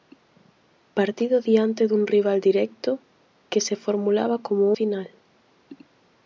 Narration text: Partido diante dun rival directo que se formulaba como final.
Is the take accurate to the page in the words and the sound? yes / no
yes